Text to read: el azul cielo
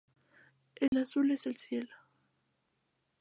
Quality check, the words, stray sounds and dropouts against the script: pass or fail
fail